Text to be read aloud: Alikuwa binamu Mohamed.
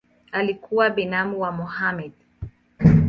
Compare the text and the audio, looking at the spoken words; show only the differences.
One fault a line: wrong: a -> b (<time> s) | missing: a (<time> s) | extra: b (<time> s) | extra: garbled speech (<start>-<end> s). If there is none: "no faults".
extra: wa (1.4 s)